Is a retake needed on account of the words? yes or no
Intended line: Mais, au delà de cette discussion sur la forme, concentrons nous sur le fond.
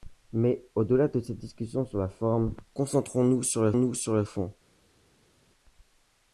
yes